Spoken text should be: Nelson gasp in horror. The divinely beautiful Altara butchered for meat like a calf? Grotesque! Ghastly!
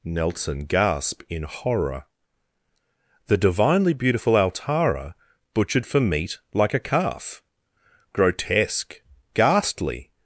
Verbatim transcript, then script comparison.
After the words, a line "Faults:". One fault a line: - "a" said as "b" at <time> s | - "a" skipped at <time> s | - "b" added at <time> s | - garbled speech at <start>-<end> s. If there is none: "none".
Nelson gasp in horror. The divinely beautiful Altara butchered for meat like a calf? Grotesque! Ghastly!
Faults:
none